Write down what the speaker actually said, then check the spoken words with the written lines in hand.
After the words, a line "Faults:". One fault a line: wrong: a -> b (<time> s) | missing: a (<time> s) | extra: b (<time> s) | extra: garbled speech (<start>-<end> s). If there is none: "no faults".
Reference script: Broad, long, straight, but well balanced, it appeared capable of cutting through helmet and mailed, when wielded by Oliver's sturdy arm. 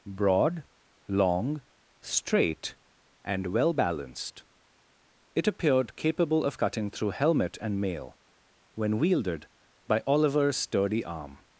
Broad, long, straight, and well balanced, it appeared capable of cutting through helmet and mail, when wielded by Oliver's sturdy arm.
Faults:
wrong: but -> and (3.2 s)
wrong: mailed -> mail (7.8 s)